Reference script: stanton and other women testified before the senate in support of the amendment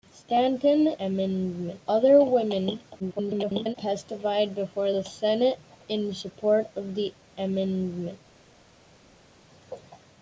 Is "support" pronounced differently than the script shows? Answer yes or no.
no